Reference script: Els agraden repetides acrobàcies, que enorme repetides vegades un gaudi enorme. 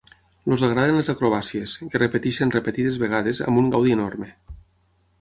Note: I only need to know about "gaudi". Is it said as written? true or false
true